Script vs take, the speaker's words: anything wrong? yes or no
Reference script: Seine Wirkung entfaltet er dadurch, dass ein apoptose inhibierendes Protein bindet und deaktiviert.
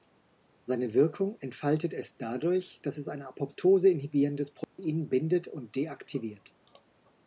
yes